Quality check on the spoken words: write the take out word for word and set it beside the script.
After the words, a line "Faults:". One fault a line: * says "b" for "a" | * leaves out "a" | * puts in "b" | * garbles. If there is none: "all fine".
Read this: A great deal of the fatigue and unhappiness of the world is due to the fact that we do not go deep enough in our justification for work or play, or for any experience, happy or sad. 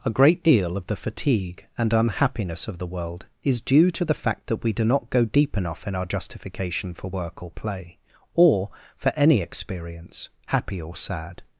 A great deal of the fatigue and unhappiness of the world is due to the fact that we do not go deep enough in our justification for work or play, or for any experience, happy or sad.
Faults:
all fine